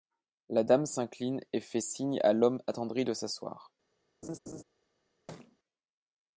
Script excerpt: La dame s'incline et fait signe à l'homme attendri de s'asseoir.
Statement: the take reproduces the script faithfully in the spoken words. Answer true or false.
true